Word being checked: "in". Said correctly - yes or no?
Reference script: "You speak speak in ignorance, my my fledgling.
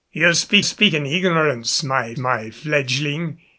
yes